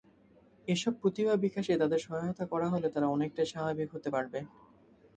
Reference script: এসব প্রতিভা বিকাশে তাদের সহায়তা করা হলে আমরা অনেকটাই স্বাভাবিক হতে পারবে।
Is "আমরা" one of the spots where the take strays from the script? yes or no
yes